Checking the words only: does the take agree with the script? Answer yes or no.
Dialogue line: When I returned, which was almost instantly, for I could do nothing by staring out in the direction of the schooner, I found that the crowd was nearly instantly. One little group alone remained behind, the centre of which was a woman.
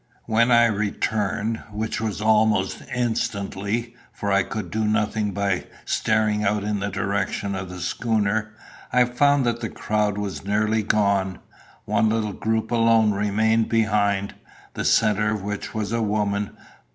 no